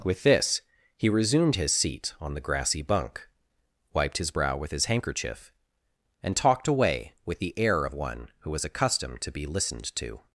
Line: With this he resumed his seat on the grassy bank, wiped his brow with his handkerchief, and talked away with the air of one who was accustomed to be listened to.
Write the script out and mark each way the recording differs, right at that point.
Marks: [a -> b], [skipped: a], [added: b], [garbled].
With this he resumed his seat on the grassy [bank, -> bunk] wiped his brow with his handkerchief, and talked away with the air of one who was accustomed to be listened to.